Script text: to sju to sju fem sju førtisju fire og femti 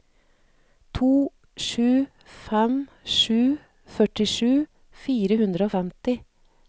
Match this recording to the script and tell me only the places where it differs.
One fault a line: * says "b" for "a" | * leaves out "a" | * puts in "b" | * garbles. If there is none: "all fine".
* leaves out "to sju"
* puts in "hundre"